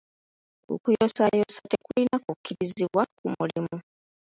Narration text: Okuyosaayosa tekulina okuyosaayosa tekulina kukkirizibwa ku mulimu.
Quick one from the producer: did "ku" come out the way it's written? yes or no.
yes